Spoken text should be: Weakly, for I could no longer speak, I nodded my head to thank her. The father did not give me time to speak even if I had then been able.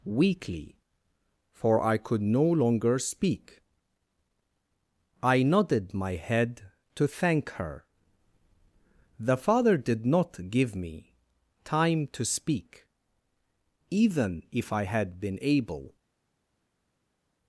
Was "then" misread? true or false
true